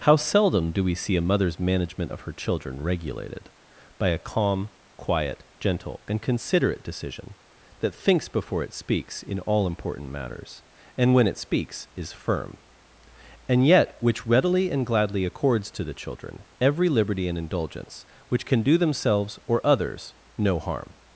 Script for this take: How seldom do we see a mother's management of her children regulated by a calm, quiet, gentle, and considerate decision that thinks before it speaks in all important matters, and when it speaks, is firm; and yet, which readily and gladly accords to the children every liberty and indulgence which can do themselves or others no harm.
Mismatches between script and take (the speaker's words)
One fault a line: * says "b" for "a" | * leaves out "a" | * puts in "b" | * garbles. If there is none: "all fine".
all fine